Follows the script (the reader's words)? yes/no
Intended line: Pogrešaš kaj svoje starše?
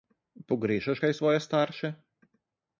yes